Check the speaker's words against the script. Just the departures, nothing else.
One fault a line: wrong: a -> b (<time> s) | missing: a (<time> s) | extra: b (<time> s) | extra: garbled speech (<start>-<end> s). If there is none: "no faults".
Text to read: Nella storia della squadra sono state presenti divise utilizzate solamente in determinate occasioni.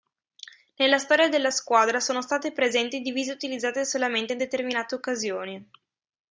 no faults